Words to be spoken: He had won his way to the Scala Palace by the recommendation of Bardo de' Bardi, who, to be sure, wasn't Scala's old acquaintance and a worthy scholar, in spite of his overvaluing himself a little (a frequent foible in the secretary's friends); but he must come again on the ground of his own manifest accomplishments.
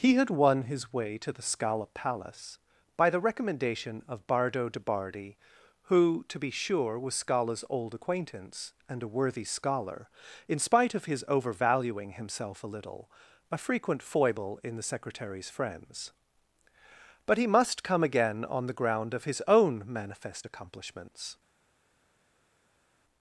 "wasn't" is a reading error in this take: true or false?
true